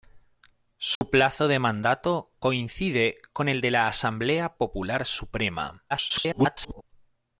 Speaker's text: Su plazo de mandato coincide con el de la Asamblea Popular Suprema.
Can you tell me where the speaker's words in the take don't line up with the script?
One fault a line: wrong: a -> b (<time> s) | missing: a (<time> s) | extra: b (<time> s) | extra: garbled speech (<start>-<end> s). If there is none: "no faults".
extra: garbled speech (5.9-6.8 s)